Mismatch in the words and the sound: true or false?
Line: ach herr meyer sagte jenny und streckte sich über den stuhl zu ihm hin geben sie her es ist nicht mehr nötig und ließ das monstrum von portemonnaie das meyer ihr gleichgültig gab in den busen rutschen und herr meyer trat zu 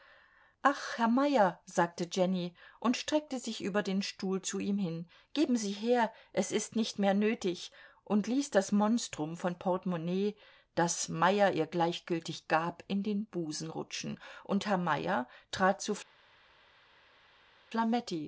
false